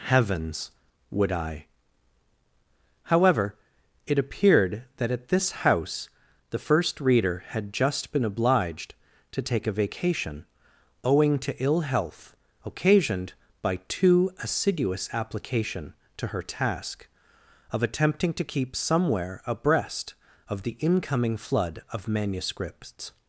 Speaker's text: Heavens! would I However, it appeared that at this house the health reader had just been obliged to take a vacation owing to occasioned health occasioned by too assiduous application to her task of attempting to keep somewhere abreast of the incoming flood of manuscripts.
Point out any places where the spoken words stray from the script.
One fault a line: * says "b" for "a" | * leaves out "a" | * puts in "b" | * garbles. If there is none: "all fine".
* says "first" for "health"
* says "ill" for "occasioned"